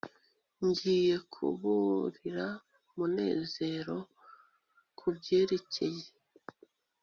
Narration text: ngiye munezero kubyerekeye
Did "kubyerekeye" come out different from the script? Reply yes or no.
no